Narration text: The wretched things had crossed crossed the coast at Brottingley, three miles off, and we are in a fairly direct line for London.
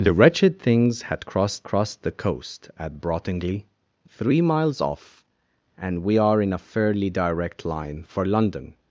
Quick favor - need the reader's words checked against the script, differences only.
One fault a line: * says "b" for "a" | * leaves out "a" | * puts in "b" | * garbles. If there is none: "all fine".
all fine